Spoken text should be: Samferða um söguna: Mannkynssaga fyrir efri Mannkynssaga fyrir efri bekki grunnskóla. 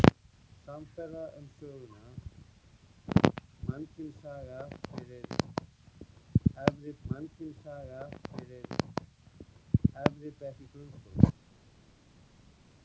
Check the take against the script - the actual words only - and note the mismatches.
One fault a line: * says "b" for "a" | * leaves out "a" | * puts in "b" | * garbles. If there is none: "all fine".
all fine